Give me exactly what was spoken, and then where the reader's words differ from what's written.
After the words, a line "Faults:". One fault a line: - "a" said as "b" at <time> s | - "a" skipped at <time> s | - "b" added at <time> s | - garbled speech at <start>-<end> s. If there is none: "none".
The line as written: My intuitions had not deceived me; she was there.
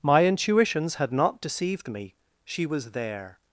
My intuitions had not deceived me; she was there.
Faults:
none